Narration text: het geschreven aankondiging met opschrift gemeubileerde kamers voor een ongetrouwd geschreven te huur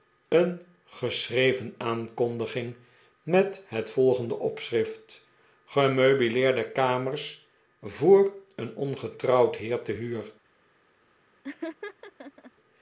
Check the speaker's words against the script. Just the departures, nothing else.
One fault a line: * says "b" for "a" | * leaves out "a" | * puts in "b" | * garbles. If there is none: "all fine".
* says "een" for "het"
* puts in "het volgende"
* says "heer" for "geschreven"